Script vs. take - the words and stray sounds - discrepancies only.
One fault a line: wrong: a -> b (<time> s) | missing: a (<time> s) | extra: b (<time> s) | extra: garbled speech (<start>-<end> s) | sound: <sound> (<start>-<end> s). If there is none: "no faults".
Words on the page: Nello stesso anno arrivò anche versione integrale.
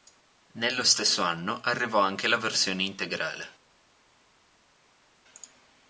extra: la (2.3 s)